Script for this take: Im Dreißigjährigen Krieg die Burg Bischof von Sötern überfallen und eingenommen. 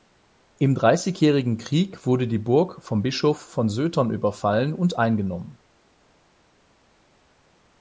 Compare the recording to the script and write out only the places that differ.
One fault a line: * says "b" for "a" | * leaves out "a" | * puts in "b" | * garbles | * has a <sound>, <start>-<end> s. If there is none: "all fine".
* puts in "wurde"
* puts in "vom"